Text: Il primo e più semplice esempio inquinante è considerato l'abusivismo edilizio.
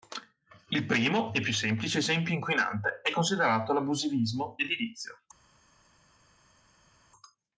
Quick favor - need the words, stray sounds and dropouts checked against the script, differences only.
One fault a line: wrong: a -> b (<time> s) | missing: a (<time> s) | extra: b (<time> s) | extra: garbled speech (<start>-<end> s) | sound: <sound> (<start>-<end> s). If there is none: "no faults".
no faults